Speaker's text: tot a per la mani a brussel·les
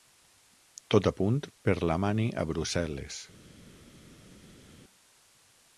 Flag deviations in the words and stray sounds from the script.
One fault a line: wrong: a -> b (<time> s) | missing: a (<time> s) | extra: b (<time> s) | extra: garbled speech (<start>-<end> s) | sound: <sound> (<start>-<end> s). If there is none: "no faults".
extra: punt (1.2 s)